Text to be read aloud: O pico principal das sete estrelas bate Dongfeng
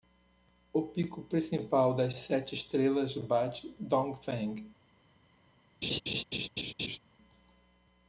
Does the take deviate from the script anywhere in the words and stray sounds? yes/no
yes